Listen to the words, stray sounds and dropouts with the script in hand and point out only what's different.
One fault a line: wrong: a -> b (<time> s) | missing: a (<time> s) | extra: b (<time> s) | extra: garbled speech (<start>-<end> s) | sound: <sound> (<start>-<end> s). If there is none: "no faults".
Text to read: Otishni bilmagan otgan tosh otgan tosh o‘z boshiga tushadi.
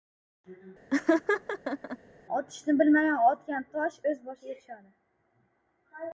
sound: laugh (0.9-2.0 s)
missing: otgan tosh (4.0 s)